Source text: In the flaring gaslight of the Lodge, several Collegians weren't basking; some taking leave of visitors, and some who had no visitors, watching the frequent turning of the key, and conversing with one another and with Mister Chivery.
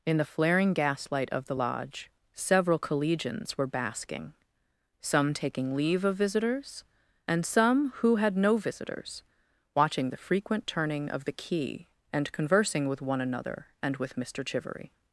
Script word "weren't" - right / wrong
wrong